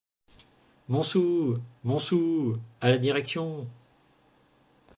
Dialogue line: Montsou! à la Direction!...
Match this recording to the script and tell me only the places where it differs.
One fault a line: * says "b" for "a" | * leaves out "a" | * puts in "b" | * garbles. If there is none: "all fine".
* puts in "montsou"